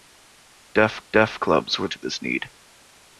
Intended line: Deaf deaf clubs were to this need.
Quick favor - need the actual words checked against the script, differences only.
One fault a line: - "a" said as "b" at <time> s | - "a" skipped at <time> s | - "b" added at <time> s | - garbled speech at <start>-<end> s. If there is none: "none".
none